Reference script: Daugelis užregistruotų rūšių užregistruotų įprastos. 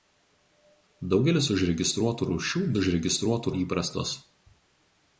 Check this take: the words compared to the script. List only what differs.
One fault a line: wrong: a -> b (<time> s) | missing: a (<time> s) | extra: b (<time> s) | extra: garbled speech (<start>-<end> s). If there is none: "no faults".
no faults